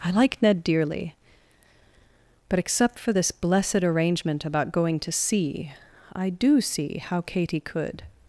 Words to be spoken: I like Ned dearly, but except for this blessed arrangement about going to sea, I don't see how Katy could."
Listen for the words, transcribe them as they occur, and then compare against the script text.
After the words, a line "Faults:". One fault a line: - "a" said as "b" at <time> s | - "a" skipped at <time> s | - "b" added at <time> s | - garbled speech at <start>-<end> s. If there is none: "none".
I like Ned dearly, but except for this blessed arrangement about going to sea, I do see how Katy could."
Faults:
- "don't" said as "do" at 6.3 s